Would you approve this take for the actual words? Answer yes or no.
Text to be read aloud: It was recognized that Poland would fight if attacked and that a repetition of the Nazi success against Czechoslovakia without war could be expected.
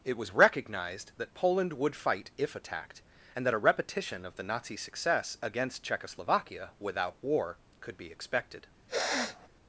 yes